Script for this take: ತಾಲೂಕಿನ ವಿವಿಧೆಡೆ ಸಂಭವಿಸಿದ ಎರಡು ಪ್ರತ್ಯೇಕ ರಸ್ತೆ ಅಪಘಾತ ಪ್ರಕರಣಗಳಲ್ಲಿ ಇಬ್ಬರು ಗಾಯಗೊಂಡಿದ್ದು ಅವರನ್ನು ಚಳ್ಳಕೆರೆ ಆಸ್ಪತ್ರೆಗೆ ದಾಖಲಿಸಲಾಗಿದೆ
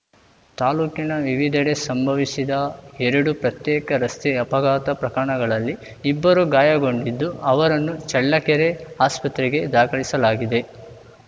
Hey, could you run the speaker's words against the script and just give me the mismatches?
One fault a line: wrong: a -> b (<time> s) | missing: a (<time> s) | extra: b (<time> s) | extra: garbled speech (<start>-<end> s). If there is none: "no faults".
no faults